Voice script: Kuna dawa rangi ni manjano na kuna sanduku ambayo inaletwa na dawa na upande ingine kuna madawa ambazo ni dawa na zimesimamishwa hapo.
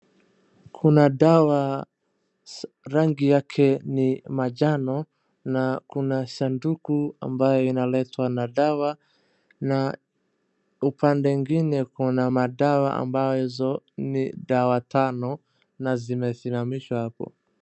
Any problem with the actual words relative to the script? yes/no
yes